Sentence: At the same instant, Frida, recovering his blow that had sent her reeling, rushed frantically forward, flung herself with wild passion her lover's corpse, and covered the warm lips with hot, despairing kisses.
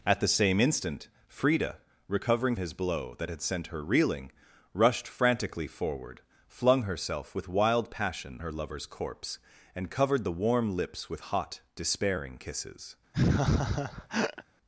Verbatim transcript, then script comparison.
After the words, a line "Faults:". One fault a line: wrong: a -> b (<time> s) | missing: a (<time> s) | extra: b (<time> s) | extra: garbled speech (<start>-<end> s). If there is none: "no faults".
At the same instant, Frida, recovering his blow that had sent her reeling, rushed frantically forward, flung herself with wild passion her lover's corpse, and covered the warm lips with hot, despairing kisses.
Faults:
no faults